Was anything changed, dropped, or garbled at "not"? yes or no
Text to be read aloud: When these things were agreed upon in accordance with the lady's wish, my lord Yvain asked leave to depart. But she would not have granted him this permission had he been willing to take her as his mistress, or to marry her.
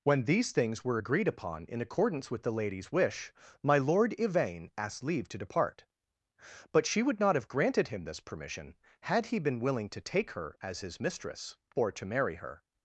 no